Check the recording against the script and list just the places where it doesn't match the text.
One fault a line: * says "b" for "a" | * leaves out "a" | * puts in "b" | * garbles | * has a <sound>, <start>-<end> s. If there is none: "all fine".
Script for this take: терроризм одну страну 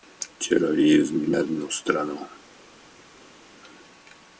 all fine